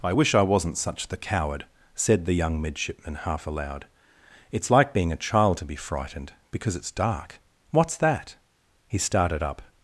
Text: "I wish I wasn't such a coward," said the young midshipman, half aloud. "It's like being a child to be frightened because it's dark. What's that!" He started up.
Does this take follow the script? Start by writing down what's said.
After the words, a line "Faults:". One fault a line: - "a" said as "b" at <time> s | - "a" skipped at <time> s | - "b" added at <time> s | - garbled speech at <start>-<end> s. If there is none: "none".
"I wish I wasn't such the coward," said the young midshipman, half aloud. "It's like being a child to be frightened because it's dark. What's that!" He started up.
Faults:
- "a" said as "the" at 1.1 s